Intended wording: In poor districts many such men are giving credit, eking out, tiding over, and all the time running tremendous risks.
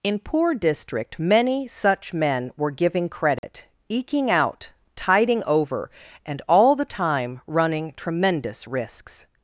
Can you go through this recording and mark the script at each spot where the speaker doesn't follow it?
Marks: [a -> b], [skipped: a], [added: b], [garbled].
In poor [districts -> district] many such men [are -> were] giving credit, eking out, tiding over, and all the time running tremendous risks.